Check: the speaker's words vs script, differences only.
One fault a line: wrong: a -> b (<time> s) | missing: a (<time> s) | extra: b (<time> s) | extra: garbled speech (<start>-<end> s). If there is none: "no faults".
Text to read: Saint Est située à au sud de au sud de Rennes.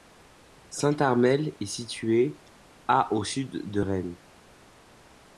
extra: Armel (1.0 s)
missing: au sud de (3.8 s)